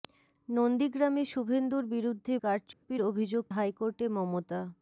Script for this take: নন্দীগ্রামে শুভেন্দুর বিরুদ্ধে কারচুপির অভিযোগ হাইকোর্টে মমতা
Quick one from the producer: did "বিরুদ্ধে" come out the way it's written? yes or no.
yes